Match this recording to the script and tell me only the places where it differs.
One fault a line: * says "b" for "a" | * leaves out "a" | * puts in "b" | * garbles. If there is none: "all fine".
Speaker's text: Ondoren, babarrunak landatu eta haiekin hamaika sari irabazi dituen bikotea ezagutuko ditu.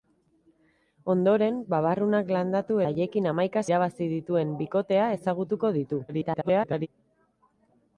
* leaves out "eta"
* leaves out "sari"
* garbles